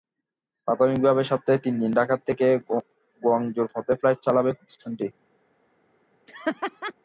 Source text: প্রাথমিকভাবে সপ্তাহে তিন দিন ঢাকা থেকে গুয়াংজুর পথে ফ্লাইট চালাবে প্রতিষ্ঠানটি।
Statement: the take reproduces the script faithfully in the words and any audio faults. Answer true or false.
false